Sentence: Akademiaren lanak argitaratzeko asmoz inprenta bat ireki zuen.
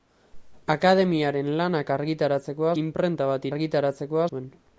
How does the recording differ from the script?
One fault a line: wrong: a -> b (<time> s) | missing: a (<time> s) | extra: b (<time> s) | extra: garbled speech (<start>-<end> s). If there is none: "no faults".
missing: asmoz (2.7 s)
wrong: ireki -> argitaratzeko (3.5 s)